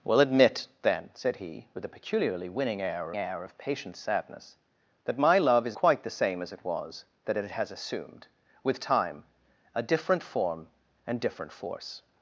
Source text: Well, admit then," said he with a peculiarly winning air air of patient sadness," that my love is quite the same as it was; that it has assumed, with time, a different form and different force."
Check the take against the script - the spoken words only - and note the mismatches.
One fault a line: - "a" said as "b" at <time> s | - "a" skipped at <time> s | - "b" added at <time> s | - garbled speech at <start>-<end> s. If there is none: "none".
none